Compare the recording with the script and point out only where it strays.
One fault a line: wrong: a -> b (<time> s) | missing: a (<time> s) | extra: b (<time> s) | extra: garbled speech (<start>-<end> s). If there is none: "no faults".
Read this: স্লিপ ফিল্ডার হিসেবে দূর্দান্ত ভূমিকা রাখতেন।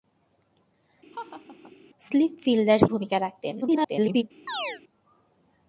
missing: হিসেবে দূর্দান্ত (2.8 s)
extra: garbled speech (3.6-4.2 s)